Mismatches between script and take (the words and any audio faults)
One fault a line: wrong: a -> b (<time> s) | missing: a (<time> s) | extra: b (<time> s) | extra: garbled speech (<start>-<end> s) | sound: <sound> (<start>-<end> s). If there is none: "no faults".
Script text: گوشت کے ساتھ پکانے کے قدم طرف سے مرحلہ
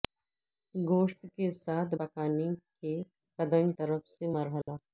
sound: dropout (4.6-4.7 s)